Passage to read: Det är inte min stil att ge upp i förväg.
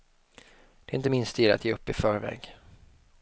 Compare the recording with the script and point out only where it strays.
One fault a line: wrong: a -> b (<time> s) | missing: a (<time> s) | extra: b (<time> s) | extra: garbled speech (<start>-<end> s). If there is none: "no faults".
no faults